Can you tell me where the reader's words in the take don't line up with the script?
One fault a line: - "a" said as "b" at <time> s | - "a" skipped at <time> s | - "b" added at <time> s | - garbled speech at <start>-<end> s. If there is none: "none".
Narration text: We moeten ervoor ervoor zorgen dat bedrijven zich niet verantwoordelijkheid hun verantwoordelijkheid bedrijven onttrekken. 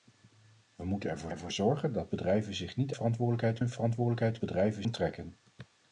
none